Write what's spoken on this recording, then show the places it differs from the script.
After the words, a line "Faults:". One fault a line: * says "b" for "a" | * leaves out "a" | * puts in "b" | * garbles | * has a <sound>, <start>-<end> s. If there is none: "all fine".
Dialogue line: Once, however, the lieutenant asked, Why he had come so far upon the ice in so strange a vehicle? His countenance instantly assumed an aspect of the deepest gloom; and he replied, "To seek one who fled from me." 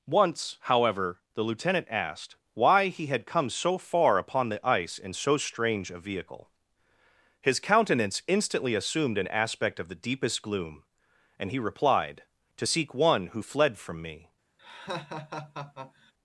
Once, however, the lieutenant asked, Why he had come so far upon the ice in so strange a vehicle? His countenance instantly assumed an aspect of the deepest gloom; and he replied, "To seek one who fled from me."
Faults:
* has a laugh, 14.6-16.1 s